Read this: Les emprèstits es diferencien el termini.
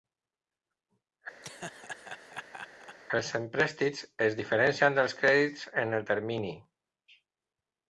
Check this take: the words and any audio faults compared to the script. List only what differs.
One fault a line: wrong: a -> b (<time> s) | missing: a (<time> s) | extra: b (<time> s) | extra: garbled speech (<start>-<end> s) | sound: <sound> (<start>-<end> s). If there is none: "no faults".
sound: laugh (1.4-3.0 s)
wrong: Les -> Els (3.2 s)
extra: dels crèdits en (5.0 s)